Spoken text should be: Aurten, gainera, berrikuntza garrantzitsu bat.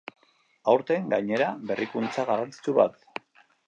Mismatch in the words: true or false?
false